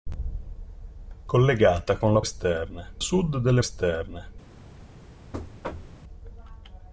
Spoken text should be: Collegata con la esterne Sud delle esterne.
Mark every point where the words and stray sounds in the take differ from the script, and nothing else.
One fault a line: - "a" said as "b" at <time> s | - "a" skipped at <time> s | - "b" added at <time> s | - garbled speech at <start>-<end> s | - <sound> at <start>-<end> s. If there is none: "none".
- thud at 5.3-6.0 s